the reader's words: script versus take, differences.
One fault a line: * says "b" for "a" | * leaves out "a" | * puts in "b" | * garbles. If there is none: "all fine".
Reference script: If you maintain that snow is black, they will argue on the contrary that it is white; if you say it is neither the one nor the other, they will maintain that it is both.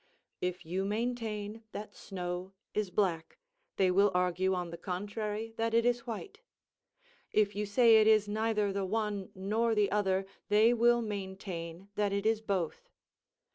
all fine